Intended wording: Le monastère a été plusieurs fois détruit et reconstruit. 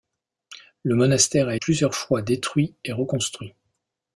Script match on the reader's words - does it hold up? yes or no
no